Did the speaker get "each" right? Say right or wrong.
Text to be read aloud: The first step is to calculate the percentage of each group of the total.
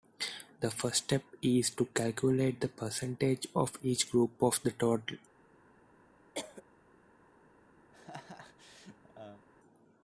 right